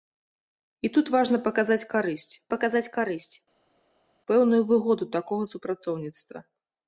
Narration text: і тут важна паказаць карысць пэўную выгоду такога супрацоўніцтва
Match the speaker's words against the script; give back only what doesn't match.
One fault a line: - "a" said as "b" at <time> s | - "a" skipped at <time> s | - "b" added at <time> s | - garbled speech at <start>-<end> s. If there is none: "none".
- "паказаць карысць" added at 2.5 s